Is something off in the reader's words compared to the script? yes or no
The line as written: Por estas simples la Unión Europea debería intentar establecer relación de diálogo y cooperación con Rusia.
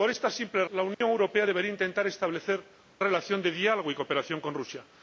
no